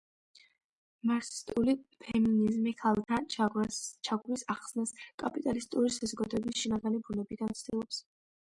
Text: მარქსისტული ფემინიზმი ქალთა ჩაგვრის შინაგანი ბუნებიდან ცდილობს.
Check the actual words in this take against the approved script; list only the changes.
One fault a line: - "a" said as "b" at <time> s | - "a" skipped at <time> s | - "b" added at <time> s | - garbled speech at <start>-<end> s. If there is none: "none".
- "ახსნას კაპიტალისტური საზოგადოების" added at 4.6 s